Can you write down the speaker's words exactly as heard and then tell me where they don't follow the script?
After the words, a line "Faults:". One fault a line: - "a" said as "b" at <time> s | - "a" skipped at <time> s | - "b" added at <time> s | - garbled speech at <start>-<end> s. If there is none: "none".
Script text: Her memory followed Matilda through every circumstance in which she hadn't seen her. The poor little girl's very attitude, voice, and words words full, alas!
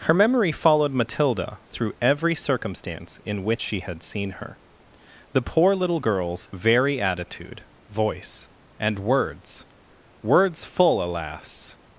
Her memory followed Matilda through every circumstance in which she had seen her. The poor little girl's very attitude, voice, and words words full, alas!
Faults:
- "hadn't" said as "had" at 3.8 s